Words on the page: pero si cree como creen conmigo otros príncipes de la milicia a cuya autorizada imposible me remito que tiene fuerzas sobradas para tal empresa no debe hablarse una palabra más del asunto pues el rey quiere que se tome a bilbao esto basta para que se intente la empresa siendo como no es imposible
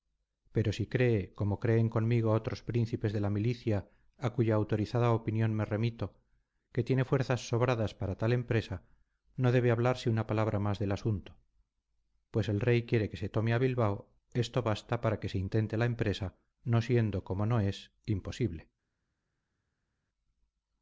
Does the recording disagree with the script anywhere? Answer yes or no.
yes